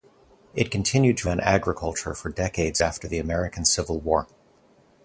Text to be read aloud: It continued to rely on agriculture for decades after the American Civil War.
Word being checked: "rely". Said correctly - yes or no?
no